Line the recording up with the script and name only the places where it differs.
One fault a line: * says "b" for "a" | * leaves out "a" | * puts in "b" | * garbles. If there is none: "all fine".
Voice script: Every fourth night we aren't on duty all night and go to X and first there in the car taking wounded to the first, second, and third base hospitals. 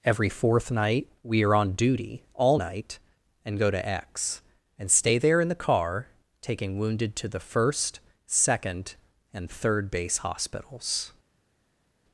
* says "are" for "aren't"
* says "stay" for "first"